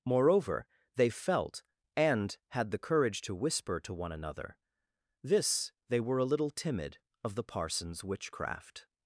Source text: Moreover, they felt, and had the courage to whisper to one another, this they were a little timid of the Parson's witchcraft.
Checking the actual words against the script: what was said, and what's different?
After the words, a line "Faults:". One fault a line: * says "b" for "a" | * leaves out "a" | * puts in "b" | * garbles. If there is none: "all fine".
Moreover, they felt, and had the courage to whisper to one another, this they were a little timid of the Parson's witchcraft.
Faults:
all fine